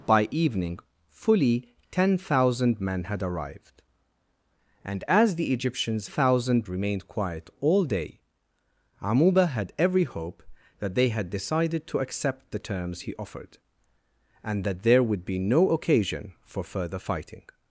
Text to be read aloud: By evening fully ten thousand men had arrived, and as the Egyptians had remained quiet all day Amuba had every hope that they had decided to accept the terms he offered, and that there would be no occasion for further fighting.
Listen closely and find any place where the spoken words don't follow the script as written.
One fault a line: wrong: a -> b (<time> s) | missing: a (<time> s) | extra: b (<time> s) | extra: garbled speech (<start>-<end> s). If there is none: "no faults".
wrong: had -> thousand (6.0 s)